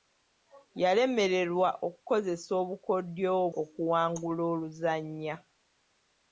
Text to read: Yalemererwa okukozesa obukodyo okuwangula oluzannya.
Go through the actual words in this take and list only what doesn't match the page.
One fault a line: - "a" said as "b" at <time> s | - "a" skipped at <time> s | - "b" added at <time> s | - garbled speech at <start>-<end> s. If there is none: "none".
none